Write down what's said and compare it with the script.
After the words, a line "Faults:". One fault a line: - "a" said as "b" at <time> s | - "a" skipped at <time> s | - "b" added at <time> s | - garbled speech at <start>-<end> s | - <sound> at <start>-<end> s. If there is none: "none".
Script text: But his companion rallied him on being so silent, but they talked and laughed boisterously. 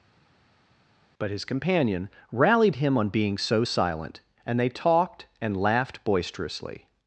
But his companion rallied him on being so silent, and they talked and laughed boisterously.
Faults:
- "but" said as "and" at 4.4 s